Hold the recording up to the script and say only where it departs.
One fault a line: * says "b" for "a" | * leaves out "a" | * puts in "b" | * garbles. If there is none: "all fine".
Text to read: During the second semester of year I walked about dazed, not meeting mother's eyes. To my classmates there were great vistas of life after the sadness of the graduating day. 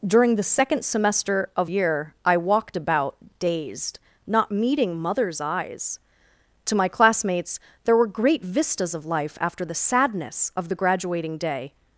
all fine